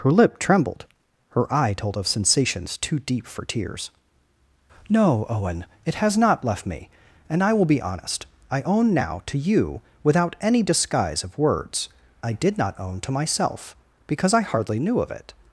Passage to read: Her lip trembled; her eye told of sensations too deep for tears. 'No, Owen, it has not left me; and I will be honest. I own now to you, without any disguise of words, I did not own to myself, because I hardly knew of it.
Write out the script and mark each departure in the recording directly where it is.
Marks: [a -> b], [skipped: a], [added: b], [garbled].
Her lip trembled; her eye told of sensations too deep for tears. 'No, Owen, it has not left me; and I will be honest. I own now to you, without any disguise of words, I did not own to myself, because I hardly knew of it.